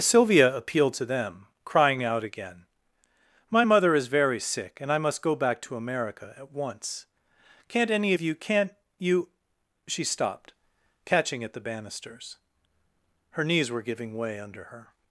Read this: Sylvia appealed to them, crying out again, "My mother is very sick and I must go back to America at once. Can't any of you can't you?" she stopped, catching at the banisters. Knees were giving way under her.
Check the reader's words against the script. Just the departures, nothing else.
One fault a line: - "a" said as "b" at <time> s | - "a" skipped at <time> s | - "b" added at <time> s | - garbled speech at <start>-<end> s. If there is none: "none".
- "Her" added at 13.3 s